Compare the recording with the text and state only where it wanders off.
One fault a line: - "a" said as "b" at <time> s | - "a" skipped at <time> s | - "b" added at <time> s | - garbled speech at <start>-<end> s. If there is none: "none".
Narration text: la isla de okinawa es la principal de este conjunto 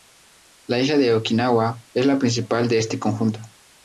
none